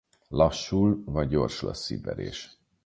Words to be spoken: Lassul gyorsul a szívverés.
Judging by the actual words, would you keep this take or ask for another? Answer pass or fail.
fail